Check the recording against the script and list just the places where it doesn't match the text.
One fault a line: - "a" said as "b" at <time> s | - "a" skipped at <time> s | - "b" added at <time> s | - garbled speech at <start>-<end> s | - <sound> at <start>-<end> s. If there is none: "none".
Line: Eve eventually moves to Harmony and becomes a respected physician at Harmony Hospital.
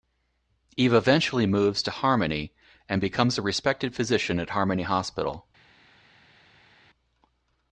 none